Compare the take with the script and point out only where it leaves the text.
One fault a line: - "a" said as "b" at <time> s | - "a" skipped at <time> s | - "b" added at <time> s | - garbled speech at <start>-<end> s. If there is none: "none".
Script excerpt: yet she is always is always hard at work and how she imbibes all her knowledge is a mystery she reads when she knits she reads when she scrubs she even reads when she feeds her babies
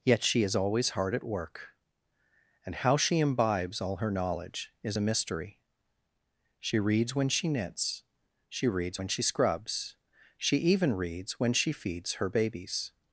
- "is always" skipped at 0.9 s